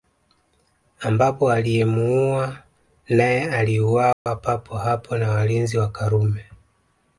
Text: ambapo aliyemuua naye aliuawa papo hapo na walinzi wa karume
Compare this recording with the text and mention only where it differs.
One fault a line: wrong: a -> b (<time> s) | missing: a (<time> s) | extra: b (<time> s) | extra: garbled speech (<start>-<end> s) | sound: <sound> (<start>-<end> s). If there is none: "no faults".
sound: dropout (4.1-4.3 s)